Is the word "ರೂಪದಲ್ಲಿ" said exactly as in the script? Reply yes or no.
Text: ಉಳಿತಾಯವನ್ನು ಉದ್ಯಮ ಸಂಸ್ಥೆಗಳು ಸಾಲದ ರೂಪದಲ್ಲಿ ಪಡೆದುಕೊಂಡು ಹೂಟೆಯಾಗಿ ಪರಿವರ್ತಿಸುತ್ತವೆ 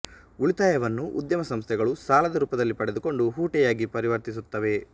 yes